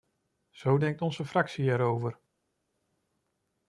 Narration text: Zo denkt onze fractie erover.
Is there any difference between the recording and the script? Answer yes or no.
no